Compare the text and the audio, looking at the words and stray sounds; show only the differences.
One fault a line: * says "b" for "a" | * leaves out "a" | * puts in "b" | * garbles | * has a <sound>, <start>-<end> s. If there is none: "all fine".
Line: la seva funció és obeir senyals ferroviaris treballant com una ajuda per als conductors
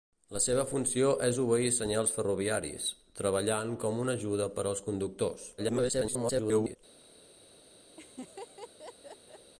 * garbles
* has a laugh, 8.0-9.5 s